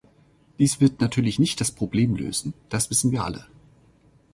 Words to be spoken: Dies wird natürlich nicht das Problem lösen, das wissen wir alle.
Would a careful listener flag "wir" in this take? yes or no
no